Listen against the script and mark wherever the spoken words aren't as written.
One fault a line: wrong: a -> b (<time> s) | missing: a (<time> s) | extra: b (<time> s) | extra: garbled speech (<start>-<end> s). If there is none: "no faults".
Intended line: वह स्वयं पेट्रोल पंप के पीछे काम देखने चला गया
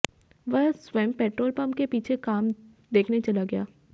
no faults